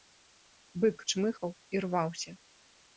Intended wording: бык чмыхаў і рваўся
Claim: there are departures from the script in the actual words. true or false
false